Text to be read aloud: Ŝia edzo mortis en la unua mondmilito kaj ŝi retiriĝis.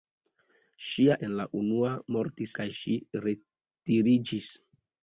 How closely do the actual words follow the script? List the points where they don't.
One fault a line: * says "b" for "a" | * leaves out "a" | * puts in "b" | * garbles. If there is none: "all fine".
* leaves out "edzo mortis"
* says "mortis" for "mondmilito"